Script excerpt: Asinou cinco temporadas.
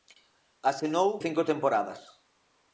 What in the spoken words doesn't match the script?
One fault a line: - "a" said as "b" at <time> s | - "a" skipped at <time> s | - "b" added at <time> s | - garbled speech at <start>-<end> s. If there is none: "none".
none